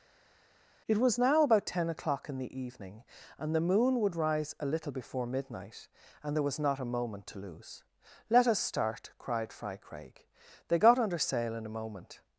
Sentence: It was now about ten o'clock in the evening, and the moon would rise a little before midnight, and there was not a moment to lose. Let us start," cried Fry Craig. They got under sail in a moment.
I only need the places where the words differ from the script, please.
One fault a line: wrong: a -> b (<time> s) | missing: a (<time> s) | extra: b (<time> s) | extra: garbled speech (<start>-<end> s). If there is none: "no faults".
no faults